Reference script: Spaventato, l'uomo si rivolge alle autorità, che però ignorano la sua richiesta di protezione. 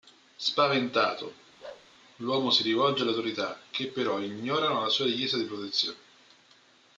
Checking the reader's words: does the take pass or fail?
pass